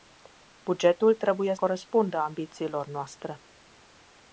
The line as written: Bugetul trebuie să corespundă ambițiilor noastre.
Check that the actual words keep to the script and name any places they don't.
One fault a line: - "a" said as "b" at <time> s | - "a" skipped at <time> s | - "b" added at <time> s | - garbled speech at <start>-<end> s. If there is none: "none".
- "să" skipped at 1.6 s